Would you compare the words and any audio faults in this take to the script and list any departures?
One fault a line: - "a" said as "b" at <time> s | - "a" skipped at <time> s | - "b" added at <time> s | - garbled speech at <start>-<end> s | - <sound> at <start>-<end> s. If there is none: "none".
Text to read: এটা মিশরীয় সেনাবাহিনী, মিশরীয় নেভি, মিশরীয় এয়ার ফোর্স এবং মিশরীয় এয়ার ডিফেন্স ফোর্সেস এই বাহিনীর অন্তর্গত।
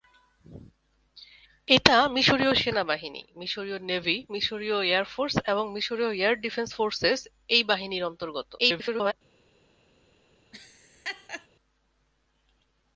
- garbled speech at 8.6-9.1 s
- laugh at 10.5-11.5 s